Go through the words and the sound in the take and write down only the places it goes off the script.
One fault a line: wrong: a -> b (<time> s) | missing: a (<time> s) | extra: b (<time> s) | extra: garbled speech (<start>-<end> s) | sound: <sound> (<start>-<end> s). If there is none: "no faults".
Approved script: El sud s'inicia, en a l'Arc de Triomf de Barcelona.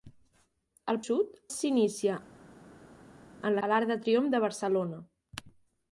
no faults